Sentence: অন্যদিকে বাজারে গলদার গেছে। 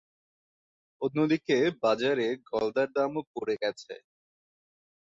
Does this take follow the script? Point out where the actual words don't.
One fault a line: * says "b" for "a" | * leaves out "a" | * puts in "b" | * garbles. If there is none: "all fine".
* puts in "দামও পড়ে"